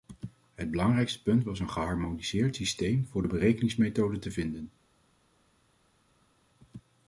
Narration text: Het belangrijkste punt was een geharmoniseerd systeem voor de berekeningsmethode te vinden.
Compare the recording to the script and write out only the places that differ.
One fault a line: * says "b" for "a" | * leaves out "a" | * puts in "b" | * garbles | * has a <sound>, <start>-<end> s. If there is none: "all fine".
all fine